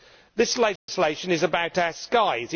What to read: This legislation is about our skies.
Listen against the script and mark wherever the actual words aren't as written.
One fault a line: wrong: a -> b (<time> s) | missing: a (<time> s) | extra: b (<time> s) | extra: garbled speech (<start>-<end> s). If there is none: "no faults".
no faults